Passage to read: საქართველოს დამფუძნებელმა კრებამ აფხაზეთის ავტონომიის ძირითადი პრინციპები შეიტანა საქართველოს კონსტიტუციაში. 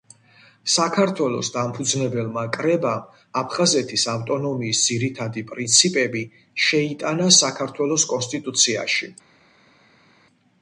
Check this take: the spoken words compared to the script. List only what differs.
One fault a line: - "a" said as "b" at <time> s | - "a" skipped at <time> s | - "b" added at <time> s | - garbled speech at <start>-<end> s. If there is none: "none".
none